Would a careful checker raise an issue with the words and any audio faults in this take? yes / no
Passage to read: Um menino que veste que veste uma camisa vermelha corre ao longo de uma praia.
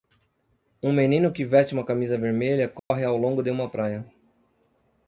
yes